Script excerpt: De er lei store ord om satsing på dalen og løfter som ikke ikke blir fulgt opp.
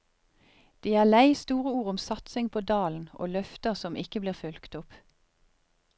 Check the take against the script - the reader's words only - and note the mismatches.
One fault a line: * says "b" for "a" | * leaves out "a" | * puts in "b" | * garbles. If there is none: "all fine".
* leaves out "ikke"